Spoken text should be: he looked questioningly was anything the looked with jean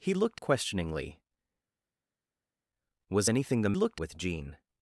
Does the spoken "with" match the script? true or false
true